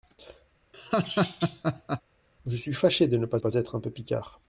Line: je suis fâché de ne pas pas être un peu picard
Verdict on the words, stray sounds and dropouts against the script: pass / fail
fail